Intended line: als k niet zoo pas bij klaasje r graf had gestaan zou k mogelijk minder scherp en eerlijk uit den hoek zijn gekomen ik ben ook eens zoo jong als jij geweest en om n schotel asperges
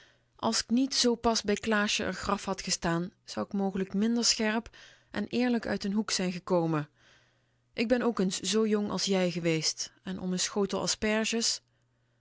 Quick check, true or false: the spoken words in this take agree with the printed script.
true